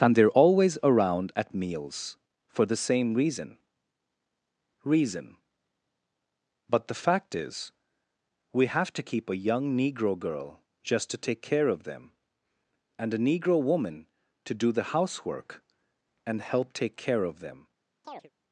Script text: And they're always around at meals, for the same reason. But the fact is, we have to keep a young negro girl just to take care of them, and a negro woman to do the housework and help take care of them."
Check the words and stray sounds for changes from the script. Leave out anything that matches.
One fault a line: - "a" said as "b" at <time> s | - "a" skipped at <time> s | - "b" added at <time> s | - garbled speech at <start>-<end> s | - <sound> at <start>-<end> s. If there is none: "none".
- "reason" added at 4.8 s
- chirp at 18.0-18.3 s